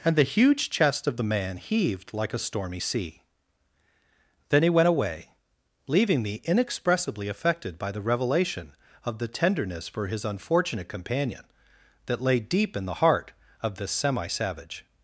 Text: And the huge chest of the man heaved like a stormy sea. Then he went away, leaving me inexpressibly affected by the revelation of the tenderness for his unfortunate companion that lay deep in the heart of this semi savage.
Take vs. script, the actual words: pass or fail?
pass